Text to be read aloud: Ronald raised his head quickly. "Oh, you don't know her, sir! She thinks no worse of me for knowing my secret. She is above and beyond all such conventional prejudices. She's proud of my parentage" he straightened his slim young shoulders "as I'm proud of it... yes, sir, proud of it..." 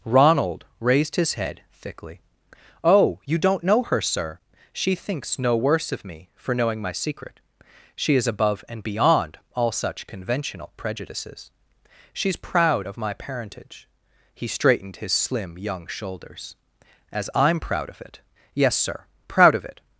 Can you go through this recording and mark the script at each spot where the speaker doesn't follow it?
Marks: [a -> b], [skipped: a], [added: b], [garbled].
Ronald raised his head [quickly. -> thickly] "Oh, you don't know her, sir! She thinks no worse of me for knowing my secret. She is above and beyond all such conventional prejudices. She's proud of my parentage" he straightened his slim young shoulders "as I'm proud of it... yes, sir, proud of it..."